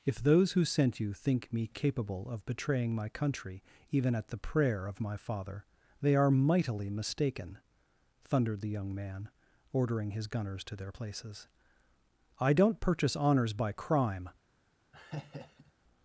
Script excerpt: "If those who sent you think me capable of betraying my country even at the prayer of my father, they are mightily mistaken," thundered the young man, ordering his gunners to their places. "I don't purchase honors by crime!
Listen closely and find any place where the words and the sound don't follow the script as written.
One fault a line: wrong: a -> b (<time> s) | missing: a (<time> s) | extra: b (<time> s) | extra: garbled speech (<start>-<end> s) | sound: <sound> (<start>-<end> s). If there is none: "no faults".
sound: laugh (14.9-15.7 s)